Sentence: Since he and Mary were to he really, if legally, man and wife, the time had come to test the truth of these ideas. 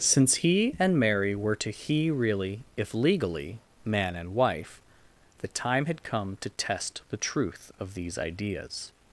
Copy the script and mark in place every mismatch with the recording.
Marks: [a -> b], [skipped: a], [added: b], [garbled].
Since he and Mary were to he really, if legally, man and wife, the time had come to test the truth of these ideas.